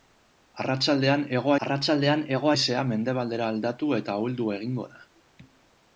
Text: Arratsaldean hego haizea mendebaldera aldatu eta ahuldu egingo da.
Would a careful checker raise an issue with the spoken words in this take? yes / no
yes